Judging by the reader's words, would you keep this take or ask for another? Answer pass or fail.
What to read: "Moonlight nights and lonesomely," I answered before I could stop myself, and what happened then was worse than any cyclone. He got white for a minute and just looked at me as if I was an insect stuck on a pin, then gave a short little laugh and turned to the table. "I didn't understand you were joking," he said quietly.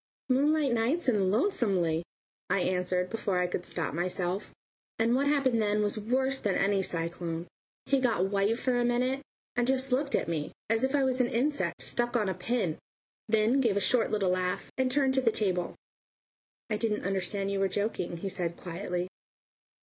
pass